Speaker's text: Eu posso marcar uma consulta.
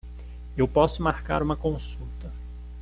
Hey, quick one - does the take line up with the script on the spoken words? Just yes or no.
yes